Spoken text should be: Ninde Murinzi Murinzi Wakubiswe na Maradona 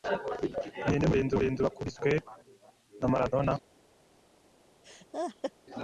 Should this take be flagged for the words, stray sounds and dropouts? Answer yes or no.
yes